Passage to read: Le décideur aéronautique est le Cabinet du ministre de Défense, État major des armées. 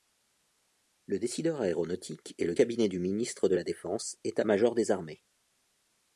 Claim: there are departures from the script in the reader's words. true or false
true